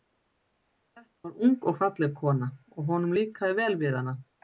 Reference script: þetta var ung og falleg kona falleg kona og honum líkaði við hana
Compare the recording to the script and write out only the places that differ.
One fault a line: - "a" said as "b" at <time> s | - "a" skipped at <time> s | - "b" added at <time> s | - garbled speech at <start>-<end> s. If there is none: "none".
- "falleg kona" skipped at 2.5 s
- "vel" added at 3.6 s